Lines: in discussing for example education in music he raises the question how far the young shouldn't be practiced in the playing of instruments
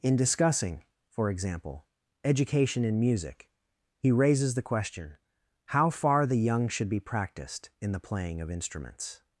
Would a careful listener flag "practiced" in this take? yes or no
no